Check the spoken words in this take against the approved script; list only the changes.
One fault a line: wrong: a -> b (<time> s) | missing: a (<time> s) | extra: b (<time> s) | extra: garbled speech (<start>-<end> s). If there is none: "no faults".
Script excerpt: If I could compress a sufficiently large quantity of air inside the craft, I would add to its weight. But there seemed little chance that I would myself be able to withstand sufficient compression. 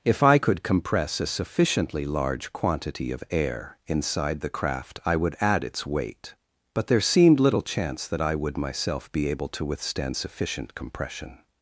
missing: to (5.6 s)